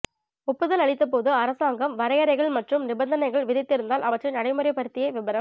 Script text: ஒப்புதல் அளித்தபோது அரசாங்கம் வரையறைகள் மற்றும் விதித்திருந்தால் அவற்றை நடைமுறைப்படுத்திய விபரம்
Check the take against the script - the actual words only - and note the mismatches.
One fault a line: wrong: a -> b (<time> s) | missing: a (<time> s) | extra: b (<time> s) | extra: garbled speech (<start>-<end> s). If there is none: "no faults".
extra: நிபந்தனைகள் (2.9 s)